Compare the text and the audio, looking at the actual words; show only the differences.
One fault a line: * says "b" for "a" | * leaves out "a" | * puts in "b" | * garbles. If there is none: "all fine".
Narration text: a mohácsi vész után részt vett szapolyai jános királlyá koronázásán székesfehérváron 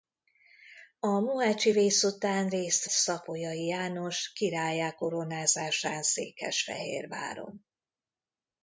* leaves out "vett"